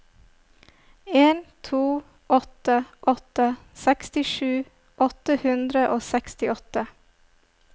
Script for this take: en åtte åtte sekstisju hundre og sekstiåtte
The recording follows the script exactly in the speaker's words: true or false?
false